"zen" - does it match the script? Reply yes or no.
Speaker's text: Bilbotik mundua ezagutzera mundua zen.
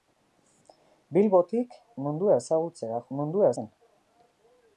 yes